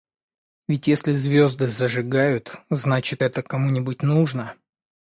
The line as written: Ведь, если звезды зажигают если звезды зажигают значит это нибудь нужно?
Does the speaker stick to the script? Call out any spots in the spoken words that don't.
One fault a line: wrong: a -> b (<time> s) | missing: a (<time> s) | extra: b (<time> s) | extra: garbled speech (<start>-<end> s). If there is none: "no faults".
missing: если звезды зажигают (2.5 s)
extra: кому (3.4 s)